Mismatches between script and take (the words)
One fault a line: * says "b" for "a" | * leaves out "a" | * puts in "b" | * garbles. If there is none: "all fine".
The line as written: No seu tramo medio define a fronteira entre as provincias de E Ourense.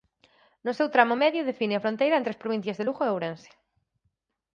* puts in "Lugo"